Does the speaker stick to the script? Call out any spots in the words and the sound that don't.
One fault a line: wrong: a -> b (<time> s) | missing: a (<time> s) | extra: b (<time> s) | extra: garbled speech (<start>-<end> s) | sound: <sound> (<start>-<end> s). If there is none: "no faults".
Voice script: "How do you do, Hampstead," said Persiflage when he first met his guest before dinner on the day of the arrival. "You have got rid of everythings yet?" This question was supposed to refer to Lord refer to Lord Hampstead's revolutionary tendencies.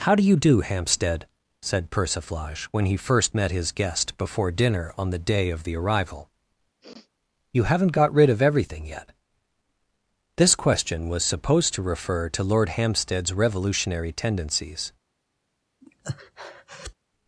sound: sniff (6.8-7.1 s)
wrong: have -> haven't (7.6 s)
wrong: everythings -> everything (8.4 s)
missing: refer to Lord (12.7 s)
sound: breath (15.8-16.9 s)